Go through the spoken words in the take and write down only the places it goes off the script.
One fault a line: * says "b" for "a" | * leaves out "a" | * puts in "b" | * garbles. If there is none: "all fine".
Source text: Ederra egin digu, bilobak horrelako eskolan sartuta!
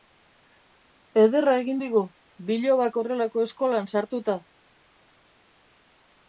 all fine